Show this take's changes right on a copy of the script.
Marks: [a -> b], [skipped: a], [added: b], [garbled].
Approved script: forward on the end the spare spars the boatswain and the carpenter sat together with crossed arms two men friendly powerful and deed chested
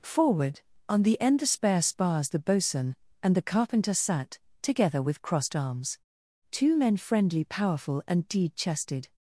forward on the end the spare spars the boatswain and the carpenter sat together with crossed arms two men friendly powerful and deed chested